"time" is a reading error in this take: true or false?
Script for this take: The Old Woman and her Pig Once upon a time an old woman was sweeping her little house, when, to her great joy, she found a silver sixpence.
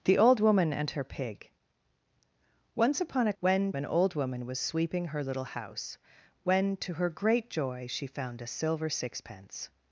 true